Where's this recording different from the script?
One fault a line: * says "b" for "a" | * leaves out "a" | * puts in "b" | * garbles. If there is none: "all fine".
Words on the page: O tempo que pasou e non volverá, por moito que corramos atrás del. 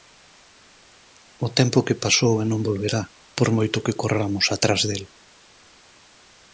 all fine